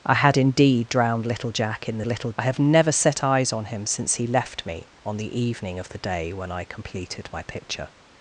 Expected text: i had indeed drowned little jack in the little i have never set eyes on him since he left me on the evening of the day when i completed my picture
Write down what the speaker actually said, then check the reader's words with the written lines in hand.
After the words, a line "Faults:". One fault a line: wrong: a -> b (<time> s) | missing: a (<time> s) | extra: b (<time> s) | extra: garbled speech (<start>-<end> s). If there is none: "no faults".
i had indeed drowned little jack in the little i have never set eyes on him since he left me on the evening of the day when i completed my picture
Faults:
no faults